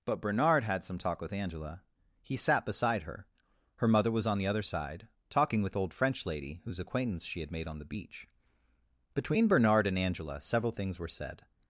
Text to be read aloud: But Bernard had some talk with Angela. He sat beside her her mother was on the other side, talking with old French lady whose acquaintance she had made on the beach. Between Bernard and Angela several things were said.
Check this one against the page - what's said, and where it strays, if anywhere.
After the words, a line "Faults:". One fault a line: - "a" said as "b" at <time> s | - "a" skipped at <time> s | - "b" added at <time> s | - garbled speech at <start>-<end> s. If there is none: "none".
But Bernard had some talk with Angela. He sat beside her her mother was on the other side, talking with old French lady whose acquaintance she had made on the beach. Between Bernard and Angela several things were said.
Faults:
none